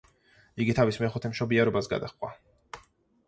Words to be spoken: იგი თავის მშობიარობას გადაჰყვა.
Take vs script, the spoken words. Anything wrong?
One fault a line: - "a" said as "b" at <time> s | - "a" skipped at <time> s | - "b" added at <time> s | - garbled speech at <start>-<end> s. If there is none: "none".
- "მეხუთე" added at 1.0 s